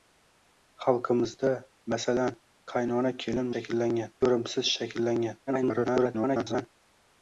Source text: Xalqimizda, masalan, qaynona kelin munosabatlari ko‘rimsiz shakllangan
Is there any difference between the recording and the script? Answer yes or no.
yes